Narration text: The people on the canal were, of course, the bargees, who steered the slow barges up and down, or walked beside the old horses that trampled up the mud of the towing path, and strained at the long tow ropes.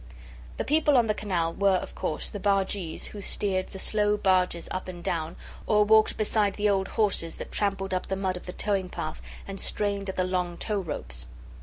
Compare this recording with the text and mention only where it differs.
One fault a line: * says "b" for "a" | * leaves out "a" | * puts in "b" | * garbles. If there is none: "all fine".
all fine